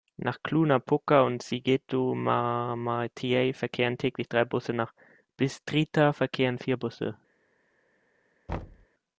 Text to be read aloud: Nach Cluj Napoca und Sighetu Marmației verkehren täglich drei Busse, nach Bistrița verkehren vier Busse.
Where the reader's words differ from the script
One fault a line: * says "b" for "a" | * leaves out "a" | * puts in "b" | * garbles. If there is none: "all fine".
all fine